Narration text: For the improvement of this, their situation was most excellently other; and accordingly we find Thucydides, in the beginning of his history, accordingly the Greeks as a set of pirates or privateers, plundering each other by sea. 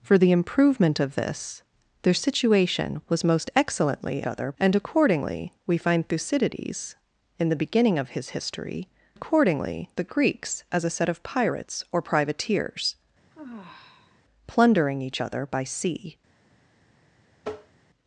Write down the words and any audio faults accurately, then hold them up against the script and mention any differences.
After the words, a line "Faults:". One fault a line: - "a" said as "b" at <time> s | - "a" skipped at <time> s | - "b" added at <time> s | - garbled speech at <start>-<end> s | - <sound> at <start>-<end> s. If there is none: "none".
For the improvement of this, their situation was most excellently other; and accordingly we find Thucydides, in the beginning of his history, accordingly the Greeks as a set of pirates or privateers, plundering each other by sea.
Faults:
- sigh at 13.3-14.2 s
- tap at 17.4-17.8 s